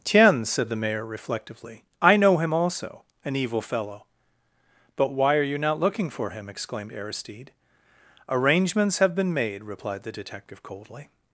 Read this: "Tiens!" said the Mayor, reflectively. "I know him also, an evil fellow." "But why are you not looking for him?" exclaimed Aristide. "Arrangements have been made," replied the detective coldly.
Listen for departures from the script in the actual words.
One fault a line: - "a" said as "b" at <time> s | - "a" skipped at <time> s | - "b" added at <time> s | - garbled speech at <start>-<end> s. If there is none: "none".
none